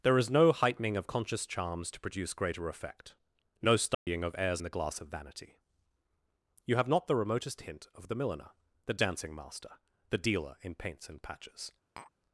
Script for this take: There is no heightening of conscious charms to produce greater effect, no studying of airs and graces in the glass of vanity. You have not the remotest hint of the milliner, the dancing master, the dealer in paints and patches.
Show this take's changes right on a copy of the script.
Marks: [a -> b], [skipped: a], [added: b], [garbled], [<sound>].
There is no heightening of conscious charms to produce greater effect, no studying [dropout] of airs [skipped: and graces in] the glass of vanity. You have not the remotest hint of the milliner, the dancing master, the dealer in paints and patches. [tap]